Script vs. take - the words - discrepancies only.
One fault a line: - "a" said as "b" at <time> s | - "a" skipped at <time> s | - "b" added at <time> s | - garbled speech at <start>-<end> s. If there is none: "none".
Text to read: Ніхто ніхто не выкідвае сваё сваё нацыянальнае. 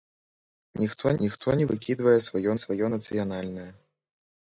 none